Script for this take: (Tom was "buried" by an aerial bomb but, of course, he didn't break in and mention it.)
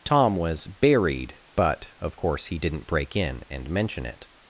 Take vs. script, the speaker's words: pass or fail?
fail